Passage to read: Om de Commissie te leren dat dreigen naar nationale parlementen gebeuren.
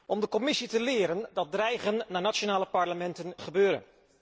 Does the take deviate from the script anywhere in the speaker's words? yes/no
no